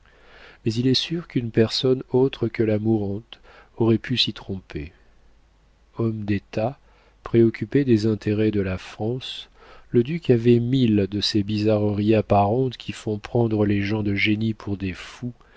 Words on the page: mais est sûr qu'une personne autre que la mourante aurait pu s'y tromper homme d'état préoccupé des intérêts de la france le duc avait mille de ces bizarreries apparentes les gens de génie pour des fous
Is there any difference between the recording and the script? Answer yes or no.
yes